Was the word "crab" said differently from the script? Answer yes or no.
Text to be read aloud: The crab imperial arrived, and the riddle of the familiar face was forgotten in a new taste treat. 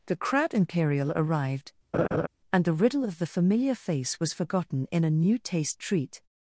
yes